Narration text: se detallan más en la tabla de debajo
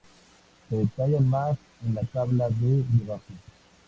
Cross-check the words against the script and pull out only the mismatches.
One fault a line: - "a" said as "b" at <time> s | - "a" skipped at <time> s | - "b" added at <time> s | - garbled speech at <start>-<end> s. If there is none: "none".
none